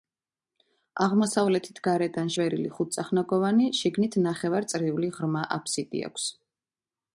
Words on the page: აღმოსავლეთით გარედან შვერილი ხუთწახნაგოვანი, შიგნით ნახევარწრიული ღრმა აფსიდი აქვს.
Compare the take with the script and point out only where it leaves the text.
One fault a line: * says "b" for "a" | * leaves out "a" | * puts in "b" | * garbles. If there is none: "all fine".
all fine